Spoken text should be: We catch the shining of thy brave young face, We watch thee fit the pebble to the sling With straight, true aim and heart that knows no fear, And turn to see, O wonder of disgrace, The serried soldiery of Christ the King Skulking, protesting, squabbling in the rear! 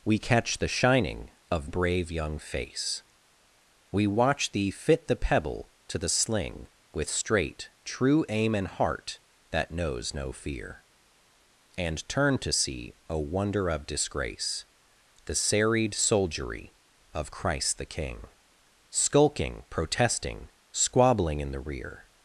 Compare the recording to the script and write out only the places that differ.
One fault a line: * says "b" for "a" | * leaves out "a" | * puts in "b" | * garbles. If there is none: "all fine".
* leaves out "thy"